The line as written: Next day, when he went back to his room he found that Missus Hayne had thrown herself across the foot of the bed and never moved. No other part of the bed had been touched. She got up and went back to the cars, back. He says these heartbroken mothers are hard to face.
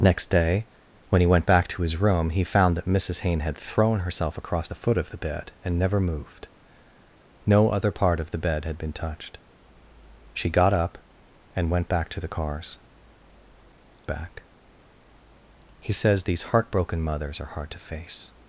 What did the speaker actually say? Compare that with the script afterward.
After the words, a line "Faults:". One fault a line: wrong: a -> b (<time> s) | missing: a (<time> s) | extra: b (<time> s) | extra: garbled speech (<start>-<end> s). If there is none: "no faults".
Next day, when he went back to his room he found that Missus Hayne had thrown herself across the foot of the bed and never moved. No other part of the bed had been touched. She got up and went back to the cars, back. He says these heartbroken mothers are hard to face.
Faults:
no faults